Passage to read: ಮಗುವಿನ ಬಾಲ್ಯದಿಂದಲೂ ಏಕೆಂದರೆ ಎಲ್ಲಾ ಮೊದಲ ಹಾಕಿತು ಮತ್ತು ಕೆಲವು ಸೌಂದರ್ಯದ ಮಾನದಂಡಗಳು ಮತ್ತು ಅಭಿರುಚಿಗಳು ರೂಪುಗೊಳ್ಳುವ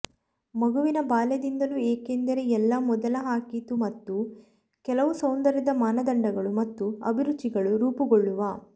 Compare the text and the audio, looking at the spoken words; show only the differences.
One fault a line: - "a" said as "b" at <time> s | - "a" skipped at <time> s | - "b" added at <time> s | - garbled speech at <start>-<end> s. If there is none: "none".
none